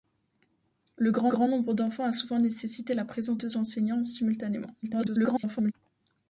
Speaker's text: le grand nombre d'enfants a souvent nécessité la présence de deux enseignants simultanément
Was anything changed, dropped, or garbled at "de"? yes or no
yes